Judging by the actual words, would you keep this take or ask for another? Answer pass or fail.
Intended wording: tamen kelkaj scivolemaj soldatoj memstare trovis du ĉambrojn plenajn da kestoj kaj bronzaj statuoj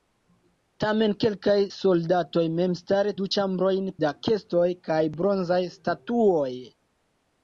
fail